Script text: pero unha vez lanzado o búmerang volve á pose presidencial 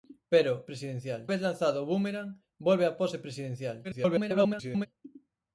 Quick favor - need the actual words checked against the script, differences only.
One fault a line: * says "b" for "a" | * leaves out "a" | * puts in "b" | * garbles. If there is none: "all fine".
* says "presidencial" for "unha"
* garbles